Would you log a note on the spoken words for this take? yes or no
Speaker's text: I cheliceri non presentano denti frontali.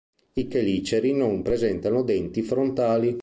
no